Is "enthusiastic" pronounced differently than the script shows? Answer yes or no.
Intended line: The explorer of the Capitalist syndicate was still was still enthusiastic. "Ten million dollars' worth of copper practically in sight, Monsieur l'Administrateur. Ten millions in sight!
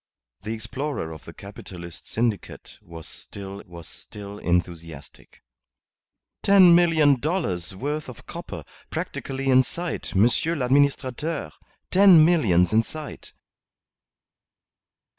no